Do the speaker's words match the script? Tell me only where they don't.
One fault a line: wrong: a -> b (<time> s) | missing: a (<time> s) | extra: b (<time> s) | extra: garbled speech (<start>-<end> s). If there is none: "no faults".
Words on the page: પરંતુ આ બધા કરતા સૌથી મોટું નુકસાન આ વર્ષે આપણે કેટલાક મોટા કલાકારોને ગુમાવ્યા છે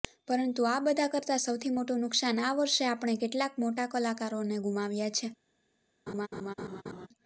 no faults